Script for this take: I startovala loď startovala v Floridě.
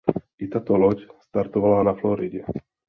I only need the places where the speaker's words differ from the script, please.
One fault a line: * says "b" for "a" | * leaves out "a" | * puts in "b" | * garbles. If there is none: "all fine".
* says "tato" for "startovala"
* says "na" for "v"